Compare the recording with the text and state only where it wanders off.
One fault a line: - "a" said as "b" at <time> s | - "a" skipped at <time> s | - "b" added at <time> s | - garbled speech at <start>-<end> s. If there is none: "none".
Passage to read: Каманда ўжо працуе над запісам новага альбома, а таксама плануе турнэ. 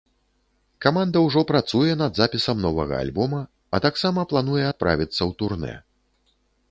- "адправіцца ў" added at 4.7 s